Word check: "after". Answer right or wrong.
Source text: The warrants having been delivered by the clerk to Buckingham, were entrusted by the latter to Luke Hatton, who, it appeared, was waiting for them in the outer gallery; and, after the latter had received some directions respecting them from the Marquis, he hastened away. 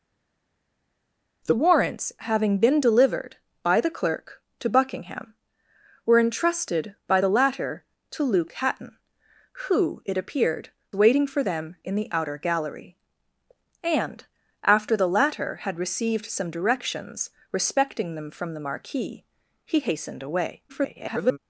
right